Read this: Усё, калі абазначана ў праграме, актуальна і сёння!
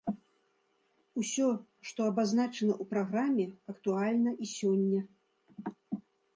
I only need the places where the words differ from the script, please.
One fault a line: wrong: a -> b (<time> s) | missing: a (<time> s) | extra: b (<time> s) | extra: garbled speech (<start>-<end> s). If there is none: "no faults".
wrong: калі -> што (1.9 s)